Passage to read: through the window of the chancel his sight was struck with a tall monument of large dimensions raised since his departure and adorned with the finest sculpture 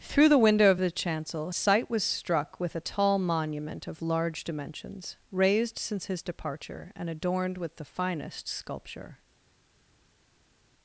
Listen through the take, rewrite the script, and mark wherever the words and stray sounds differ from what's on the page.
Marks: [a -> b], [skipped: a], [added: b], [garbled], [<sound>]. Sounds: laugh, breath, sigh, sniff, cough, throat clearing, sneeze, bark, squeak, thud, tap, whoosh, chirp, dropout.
through the window of the chancel [skipped: his] sight was struck with a tall monument of large dimensions raised since his departure and adorned with the finest sculpture